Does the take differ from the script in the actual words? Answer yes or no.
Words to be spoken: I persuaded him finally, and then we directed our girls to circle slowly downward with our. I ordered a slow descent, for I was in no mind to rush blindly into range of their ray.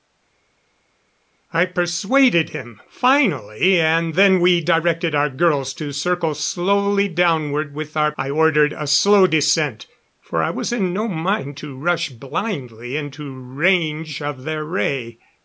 no